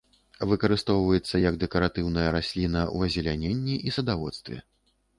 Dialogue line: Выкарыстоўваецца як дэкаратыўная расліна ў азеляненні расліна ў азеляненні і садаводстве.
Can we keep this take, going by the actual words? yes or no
no